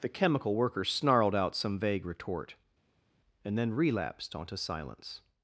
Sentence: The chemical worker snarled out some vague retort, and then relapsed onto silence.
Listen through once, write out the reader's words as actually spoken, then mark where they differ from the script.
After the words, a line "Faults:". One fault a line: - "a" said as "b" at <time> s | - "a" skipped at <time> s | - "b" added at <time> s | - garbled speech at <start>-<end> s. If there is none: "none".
The chemical worker snarled out some vague retort, and then relapsed onto silence.
Faults:
none